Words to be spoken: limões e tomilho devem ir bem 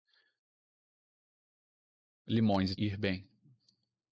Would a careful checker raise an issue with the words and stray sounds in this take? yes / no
yes